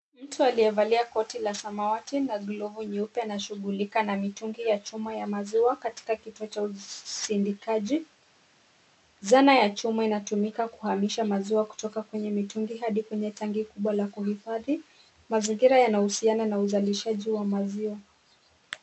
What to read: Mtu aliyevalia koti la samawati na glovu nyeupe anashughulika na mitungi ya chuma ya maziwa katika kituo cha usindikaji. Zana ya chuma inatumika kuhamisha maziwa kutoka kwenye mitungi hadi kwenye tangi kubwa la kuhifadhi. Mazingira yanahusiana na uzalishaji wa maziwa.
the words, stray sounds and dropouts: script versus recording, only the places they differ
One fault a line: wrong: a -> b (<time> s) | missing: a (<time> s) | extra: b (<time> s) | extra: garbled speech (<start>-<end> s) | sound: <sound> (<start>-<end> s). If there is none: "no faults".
no faults